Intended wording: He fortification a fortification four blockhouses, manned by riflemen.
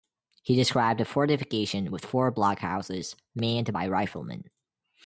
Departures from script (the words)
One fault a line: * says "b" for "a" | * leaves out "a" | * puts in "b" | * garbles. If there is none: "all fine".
* says "described" for "fortification"
* puts in "with"